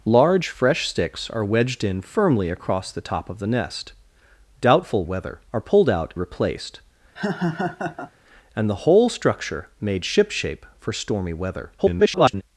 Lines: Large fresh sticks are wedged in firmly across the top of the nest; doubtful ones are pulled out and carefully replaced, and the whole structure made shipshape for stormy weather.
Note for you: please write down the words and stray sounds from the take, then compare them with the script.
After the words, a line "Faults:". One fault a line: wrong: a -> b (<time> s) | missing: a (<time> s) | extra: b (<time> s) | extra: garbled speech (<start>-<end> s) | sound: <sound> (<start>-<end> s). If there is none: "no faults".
Large fresh sticks are wedged in firmly across the top of the nest; doubtful weather are pulled out replaced, and the whole structure made shipshape for stormy weather. [garbled]
Faults:
wrong: ones -> weather (5.0 s)
missing: and carefully (6.1 s)
sound: laugh (7.2-8.1 s)
extra: garbled speech (11.8-12.4 s)